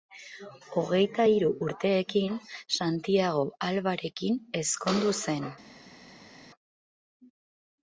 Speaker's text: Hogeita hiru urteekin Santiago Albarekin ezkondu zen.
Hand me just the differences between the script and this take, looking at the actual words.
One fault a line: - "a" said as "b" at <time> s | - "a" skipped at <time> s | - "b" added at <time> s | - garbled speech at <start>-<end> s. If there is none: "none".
none